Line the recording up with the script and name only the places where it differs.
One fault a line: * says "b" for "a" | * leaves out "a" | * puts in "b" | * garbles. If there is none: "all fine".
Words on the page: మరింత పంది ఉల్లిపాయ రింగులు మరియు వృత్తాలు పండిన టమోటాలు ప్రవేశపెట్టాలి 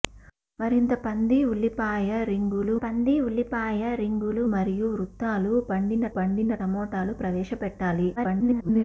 * puts in "పంది ఉల్లిపాయ రింగులు"
* puts in "పండిన"
* garbles